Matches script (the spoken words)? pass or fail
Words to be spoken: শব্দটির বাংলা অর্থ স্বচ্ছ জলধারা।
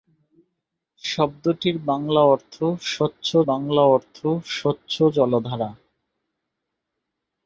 fail